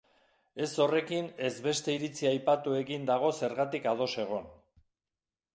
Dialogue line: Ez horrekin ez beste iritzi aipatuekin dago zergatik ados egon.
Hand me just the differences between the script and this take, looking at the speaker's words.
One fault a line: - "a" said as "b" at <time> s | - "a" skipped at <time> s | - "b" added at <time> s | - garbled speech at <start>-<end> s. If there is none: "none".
none